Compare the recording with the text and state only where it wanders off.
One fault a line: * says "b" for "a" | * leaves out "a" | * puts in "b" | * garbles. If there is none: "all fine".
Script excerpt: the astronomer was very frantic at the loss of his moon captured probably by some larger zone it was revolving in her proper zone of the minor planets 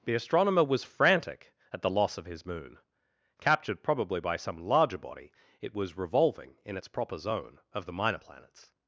* leaves out "very"
* says "body" for "zone"
* says "its" for "her"